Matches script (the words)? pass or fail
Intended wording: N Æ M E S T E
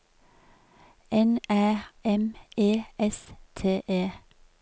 pass